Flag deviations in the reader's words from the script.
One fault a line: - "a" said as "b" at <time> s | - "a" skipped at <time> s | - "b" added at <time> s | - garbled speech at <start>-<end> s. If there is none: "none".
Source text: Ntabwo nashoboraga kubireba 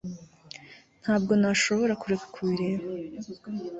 - "kureka" added at 2.0 s